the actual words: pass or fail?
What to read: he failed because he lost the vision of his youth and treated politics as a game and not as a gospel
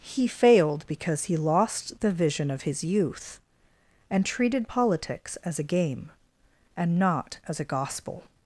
pass